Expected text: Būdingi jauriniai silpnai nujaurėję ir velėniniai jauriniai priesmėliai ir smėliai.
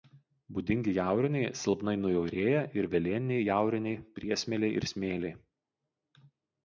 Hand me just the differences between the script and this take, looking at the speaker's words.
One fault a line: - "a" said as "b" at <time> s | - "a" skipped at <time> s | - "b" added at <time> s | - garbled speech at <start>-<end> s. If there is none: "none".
none